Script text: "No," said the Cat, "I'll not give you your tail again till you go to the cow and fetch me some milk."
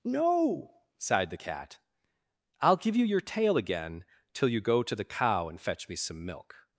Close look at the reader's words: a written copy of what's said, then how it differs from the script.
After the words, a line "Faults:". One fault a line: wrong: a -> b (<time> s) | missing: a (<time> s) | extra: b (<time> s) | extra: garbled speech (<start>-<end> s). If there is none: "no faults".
"No," sighed the Cat, "I'll give you your tail again till you go to the cow and fetch me some milk."
Faults:
wrong: said -> sighed (1.0 s)
missing: not (2.8 s)